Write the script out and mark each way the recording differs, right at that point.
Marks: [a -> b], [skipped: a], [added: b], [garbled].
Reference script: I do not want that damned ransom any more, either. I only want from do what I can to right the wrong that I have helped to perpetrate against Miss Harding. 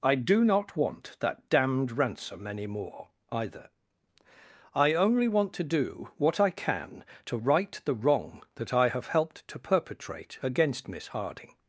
I do not want that damned ransom any more, either. I only want [from -> to] do what I can to right the wrong that I have helped to perpetrate against Miss Harding.